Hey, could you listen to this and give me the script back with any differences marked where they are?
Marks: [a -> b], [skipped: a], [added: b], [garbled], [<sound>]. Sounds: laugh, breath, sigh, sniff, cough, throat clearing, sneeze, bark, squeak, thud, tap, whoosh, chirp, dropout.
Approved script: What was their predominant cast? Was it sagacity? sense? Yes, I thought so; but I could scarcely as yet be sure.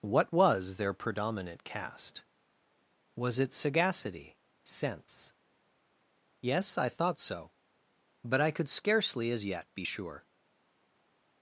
What was their predominant cast? Was it sagacity? sense? Yes, I thought so; but I could scarcely as yet be sure.